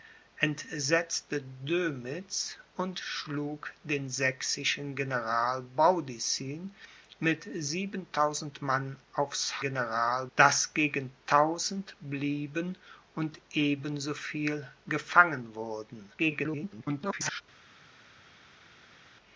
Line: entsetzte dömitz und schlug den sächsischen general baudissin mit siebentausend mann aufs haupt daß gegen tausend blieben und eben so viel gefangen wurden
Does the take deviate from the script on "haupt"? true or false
true